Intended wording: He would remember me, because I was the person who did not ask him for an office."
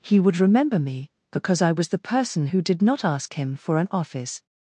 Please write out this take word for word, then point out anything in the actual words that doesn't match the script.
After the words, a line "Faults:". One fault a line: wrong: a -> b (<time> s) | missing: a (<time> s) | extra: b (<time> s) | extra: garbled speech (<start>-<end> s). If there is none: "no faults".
He would remember me, because I was the person who did not ask him for an office."
Faults:
no faults